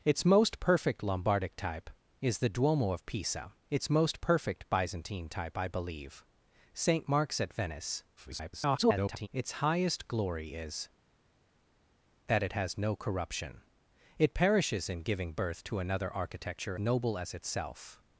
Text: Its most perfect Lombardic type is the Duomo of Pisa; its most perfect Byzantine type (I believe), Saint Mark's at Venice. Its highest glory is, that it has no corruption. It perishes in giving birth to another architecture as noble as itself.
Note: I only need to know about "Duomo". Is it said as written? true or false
true